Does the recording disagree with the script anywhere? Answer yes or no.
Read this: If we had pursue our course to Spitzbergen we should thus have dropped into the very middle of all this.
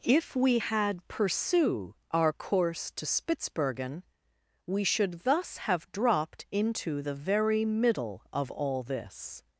no